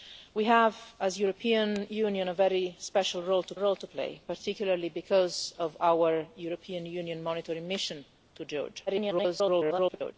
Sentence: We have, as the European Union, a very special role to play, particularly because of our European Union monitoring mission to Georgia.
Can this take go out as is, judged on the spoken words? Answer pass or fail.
fail